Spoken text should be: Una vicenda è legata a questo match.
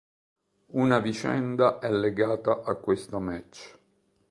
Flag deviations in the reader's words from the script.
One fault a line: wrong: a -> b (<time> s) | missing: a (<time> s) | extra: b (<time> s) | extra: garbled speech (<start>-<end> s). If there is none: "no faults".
no faults